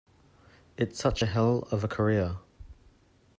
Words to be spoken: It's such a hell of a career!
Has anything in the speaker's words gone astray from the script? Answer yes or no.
no